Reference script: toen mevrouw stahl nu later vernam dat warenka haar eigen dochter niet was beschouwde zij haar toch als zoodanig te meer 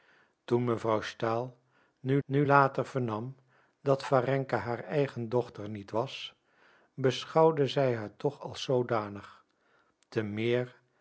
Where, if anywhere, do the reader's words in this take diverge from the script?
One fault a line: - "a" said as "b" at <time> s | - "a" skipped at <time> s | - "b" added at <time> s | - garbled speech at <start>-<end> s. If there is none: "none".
- "nu" added at 2.2 s